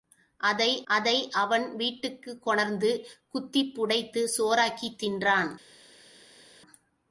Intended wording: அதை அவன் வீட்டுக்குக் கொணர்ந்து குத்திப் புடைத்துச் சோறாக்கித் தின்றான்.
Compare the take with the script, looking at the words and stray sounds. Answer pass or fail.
fail